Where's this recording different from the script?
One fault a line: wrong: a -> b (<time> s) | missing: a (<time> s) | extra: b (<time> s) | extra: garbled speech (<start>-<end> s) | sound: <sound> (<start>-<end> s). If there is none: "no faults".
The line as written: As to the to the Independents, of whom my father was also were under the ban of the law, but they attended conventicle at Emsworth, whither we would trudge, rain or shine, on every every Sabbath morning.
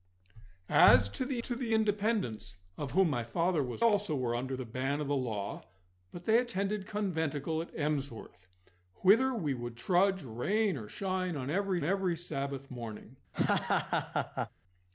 sound: laugh (13.3-14.5 s)